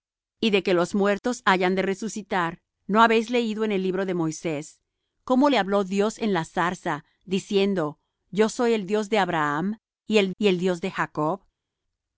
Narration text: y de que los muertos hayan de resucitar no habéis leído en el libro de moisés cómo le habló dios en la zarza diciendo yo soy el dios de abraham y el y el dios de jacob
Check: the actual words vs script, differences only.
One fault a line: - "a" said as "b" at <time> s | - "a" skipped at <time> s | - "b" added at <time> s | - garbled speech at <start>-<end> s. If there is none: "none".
none